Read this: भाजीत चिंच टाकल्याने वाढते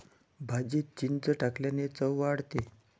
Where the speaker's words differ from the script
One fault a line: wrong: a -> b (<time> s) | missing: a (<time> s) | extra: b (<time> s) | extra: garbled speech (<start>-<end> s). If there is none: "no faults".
extra: चव (1.9 s)